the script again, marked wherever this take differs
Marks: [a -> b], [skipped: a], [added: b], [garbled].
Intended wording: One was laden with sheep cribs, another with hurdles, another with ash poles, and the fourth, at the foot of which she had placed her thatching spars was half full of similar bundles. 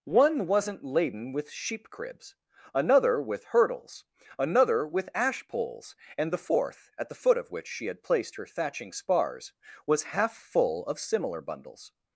One [was -> wasn't] laden with sheep cribs, another with hurdles, another with ash poles, and the fourth, at the foot of which she had placed her thatching spars was half full of similar bundles.